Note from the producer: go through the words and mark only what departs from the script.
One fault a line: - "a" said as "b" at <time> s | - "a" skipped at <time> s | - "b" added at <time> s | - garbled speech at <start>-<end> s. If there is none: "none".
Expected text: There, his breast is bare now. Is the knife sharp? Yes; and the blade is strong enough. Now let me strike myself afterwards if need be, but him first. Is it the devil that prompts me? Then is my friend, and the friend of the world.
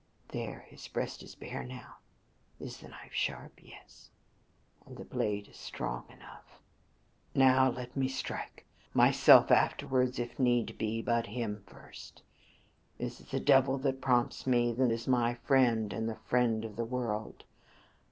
none